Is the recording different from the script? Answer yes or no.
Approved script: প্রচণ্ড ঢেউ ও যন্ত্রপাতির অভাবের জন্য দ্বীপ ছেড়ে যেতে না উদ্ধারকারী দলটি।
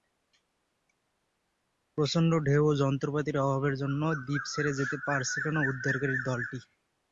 yes